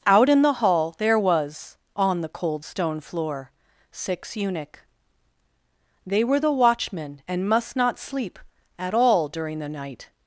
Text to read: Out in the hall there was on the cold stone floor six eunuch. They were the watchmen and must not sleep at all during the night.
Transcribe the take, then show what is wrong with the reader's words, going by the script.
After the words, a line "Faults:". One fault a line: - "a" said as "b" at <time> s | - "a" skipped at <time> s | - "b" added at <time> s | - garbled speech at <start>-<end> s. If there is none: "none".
Out in the hall there was on the cold stone floor six eunuch. They were the watchmen and must not sleep at all during the night.
Faults:
none